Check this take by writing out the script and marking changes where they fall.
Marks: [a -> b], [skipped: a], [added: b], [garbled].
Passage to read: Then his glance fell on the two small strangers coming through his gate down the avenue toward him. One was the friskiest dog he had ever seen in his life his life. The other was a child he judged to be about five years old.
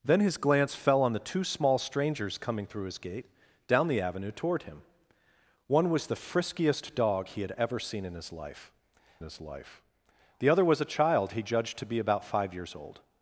Then his glance fell on the two small strangers coming through his gate down the avenue toward him. One was the friskiest dog he had ever seen in his life his life. The other was a child he judged to be about five years old.